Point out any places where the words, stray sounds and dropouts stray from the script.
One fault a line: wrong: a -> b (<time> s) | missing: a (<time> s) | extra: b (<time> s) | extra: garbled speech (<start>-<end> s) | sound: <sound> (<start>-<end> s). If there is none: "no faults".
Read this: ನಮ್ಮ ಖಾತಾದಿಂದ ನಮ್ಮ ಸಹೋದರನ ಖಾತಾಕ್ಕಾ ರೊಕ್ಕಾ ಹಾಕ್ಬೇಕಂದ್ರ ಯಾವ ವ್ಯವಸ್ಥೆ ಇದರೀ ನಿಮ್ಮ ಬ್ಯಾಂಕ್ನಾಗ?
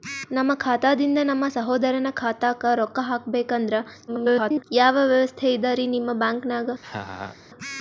extra: garbled speech (4.1-4.6 s)
sound: laugh (6.8-7.4 s)